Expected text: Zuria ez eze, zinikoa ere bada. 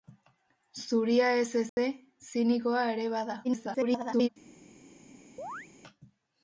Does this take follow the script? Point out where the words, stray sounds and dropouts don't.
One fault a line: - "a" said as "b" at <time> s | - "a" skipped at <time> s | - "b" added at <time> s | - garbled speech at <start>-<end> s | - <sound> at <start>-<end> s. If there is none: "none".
- dropout at 1.7-1.8 s
- garbled speech at 3.4-4.3 s
- chirp at 5.4-5.7 s